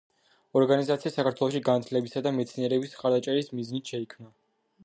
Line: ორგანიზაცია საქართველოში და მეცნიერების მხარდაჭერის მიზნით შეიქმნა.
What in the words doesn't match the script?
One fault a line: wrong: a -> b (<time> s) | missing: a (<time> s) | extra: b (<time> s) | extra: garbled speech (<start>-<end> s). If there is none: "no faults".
extra: განათლებისა (1.7 s)